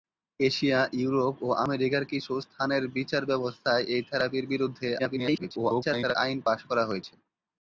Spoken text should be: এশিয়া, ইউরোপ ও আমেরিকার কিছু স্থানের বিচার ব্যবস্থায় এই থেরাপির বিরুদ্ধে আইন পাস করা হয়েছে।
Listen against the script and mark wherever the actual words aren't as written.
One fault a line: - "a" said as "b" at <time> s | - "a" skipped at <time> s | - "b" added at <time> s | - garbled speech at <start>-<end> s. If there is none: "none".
- garbled speech at 5.0-6.2 s